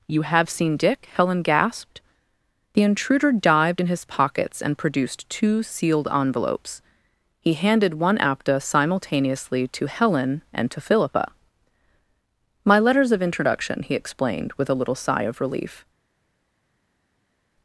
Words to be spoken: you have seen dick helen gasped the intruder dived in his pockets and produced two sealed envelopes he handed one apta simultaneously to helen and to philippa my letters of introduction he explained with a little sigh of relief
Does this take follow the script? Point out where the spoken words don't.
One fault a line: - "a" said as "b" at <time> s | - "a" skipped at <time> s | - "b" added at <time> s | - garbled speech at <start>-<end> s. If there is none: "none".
none